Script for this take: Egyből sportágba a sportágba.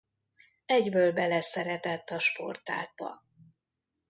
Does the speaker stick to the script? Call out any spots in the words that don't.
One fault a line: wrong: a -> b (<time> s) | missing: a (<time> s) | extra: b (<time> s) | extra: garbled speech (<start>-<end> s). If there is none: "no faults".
wrong: sportágba -> beleszeretett (1.1 s)